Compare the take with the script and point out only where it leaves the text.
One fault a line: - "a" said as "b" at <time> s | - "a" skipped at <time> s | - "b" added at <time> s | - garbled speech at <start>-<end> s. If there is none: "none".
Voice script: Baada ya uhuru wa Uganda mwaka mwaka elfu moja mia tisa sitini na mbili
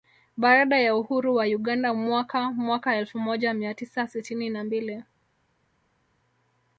none